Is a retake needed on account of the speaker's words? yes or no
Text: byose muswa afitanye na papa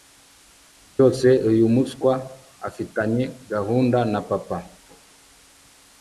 yes